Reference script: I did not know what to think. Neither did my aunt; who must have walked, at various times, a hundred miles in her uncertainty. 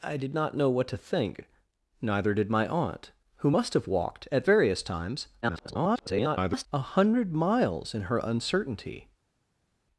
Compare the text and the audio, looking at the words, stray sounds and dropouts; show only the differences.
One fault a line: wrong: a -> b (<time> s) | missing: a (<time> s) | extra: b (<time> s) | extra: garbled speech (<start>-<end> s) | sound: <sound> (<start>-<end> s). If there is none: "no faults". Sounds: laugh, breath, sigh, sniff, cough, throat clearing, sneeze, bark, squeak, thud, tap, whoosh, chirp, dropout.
extra: garbled speech (5.4-6.7 s)